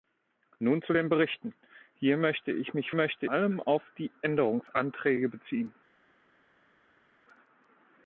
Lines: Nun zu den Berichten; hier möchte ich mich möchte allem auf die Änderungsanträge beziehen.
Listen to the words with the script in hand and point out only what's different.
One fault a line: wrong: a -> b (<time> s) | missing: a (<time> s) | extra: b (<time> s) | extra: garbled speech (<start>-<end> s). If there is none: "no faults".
no faults